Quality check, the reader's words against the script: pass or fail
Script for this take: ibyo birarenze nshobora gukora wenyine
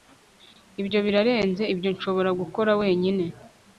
fail